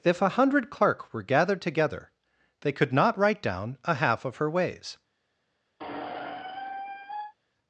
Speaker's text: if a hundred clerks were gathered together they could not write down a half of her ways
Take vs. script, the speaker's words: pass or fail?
fail